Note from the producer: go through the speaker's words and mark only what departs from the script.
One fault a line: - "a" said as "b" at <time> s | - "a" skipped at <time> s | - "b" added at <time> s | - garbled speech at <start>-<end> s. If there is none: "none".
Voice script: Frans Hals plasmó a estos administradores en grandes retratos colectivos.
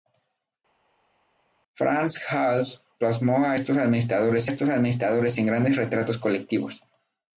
- "estos administradores" added at 4.5 s